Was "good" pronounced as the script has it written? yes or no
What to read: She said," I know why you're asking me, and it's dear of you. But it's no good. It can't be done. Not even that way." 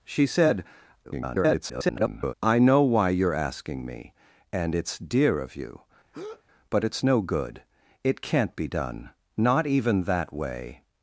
yes